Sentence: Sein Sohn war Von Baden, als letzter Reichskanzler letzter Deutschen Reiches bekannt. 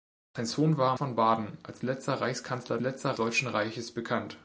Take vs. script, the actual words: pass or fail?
pass